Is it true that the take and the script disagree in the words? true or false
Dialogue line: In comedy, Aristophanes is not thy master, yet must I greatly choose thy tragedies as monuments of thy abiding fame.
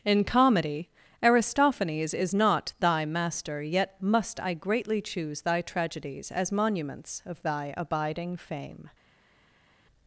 false